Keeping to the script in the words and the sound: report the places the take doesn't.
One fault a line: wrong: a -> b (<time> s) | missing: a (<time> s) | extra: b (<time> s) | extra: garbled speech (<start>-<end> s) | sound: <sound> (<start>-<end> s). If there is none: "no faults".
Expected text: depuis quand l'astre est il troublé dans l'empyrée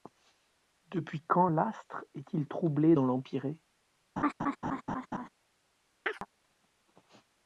sound: laugh (4.2-5.3 s)
sound: chirp (6.1-6.3 s)